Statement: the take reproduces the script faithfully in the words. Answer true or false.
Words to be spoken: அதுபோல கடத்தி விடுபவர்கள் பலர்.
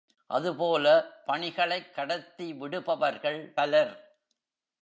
false